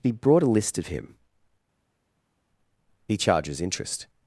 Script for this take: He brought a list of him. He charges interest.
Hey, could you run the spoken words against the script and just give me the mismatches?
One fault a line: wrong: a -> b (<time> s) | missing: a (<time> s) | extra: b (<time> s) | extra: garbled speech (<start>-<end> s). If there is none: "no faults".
no faults